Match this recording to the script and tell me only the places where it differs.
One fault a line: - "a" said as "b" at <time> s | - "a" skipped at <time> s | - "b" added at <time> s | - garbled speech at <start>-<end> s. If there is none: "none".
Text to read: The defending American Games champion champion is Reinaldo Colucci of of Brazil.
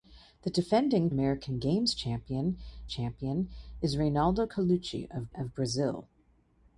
none